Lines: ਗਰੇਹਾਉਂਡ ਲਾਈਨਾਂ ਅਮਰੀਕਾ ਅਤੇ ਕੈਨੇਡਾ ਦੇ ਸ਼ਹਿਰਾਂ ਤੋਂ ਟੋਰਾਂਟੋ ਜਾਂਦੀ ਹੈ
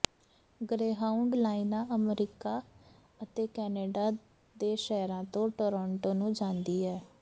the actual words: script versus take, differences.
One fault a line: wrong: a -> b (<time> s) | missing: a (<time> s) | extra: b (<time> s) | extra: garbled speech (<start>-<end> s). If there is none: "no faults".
extra: ਨੂੰ (6.1 s)